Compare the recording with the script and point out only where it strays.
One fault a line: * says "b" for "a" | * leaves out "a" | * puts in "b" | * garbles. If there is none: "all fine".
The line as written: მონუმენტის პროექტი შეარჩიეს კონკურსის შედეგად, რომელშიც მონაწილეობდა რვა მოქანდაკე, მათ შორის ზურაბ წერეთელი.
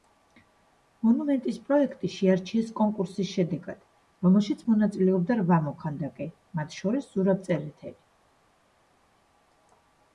all fine